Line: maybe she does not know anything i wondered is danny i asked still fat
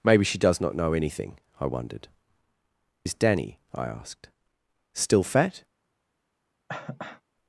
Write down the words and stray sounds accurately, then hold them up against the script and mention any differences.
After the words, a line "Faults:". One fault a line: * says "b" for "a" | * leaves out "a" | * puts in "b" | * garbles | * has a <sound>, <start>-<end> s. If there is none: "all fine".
maybe she does not know anything i wondered is danny i asked still fat
Faults:
* has a cough, 6.7-7.2 s